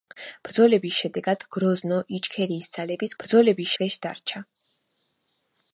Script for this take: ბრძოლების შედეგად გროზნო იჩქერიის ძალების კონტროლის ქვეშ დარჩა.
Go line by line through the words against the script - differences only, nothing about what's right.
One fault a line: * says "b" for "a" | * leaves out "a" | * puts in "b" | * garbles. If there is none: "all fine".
* says "ბრძოლების" for "კონტროლის"